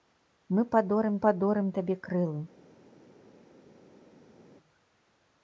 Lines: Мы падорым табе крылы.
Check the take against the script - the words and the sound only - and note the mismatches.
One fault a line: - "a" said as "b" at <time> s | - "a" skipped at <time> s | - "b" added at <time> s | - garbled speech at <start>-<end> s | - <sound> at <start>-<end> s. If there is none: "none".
- "падорым" added at 1.3 s